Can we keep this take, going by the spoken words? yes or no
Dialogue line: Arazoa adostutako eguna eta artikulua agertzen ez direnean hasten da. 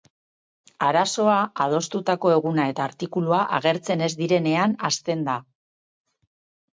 yes